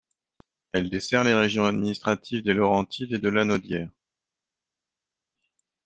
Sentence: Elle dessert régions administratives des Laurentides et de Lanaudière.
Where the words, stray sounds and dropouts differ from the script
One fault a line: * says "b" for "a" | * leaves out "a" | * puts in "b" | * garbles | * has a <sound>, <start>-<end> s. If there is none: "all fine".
* puts in "les"